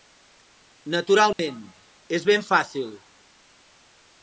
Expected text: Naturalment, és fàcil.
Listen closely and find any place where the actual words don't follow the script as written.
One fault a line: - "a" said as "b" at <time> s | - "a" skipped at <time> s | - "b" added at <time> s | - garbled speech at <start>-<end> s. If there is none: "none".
- "ben" added at 2.3 s